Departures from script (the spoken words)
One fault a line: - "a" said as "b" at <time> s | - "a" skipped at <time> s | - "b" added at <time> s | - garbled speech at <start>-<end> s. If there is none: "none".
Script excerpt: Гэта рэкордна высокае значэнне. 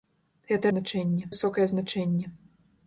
- "рэкордна" said as "значэнне" at 0.7 s